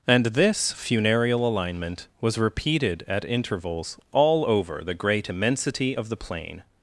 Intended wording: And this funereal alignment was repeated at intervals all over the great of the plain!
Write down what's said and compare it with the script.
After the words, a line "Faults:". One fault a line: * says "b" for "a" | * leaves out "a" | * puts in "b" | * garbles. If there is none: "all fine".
And this funereal alignment was repeated at intervals all over the great immensity of the plain!
Faults:
* puts in "immensity"